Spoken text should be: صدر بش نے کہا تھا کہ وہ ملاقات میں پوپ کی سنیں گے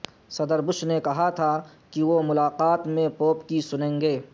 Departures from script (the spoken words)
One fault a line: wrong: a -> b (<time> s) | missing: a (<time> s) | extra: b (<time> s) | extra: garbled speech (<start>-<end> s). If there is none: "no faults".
no faults